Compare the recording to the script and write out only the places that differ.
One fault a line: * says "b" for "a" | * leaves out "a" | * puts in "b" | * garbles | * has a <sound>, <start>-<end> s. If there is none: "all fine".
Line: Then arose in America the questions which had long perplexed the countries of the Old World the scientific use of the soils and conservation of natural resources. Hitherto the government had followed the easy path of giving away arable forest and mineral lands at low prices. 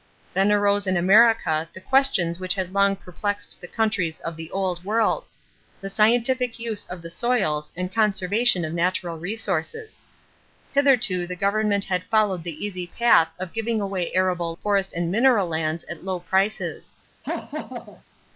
* has a laugh, 17.2-18.0 s